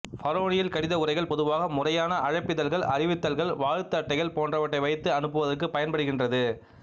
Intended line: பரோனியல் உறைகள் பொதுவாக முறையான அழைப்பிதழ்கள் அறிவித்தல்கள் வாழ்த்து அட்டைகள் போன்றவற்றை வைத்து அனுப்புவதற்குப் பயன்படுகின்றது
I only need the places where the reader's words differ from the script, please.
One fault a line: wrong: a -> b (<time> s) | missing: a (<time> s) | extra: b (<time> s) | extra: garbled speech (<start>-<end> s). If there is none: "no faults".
extra: கடித (0.7 s)